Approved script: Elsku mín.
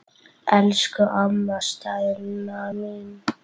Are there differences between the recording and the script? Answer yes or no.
yes